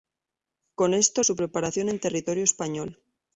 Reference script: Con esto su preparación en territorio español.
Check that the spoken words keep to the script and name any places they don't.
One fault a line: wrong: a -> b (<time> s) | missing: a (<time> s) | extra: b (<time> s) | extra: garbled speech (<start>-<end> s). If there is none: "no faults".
no faults